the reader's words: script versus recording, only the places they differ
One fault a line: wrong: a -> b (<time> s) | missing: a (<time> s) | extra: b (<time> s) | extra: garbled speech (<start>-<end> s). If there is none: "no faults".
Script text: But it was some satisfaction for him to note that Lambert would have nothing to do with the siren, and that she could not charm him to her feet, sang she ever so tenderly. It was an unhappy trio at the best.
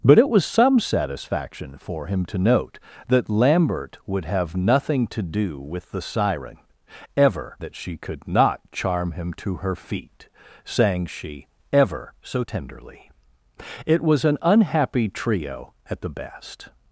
wrong: and -> ever (7.2 s)